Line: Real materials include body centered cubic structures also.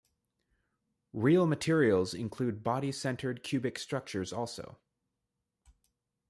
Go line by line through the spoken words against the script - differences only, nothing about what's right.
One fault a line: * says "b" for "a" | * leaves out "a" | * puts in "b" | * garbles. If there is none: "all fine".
all fine